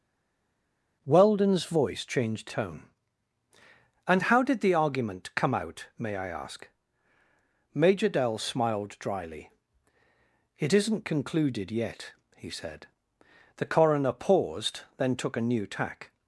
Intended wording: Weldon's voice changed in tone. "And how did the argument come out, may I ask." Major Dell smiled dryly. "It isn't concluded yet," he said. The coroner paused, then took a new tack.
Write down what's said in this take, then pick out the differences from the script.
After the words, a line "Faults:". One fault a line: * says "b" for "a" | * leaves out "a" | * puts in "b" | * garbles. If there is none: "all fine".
Weldon's voice changed tone. "And how did the argument come out, may I ask." Major Dell smiled dryly. "It isn't concluded yet," he said. The coroner paused, then took a new tack.
Faults:
* leaves out "in"